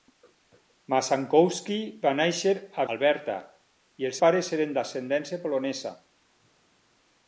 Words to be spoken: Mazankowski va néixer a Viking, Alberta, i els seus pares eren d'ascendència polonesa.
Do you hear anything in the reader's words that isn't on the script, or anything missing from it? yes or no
yes